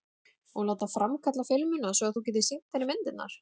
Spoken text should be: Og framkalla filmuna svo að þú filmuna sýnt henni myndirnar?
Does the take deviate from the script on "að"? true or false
false